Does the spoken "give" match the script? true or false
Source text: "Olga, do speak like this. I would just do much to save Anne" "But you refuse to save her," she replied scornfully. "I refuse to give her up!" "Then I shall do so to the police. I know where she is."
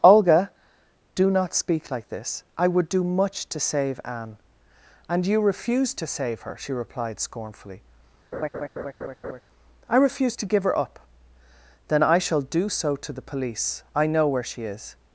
true